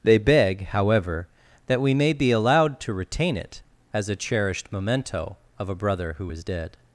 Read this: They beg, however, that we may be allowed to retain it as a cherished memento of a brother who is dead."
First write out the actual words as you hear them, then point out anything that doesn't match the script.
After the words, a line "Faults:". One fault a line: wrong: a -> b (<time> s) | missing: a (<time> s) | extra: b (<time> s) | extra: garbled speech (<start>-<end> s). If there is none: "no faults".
They beg, however, that we may be allowed to retain it as a cherished memento of a brother who is dead."
Faults:
no faults